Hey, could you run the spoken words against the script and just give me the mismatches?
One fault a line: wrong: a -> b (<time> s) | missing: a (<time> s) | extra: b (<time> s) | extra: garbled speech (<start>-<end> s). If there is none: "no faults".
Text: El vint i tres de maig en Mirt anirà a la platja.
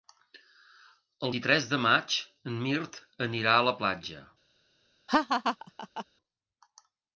missing: vint (1.3 s)